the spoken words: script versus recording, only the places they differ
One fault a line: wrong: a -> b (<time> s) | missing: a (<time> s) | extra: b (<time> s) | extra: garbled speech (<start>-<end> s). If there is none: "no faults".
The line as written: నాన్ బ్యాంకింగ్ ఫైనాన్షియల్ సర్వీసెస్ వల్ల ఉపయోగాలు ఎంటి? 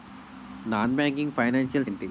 missing: సర్వీసెస్ వల్ల ఉపయోగాలు (1.9 s)